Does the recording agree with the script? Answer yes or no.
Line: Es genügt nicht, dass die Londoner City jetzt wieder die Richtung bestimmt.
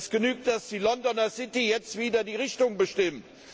no